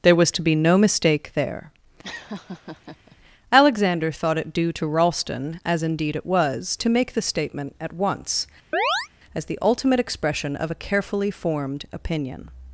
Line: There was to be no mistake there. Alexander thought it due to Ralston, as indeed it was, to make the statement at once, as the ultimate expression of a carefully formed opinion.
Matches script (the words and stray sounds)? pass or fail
fail